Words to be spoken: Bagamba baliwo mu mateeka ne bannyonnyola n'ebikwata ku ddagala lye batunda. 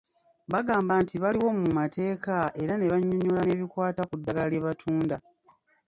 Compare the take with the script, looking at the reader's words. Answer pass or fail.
fail